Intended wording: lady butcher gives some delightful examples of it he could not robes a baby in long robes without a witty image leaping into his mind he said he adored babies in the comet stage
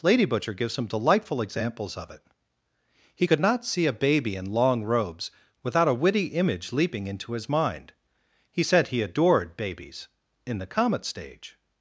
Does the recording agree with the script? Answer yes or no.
no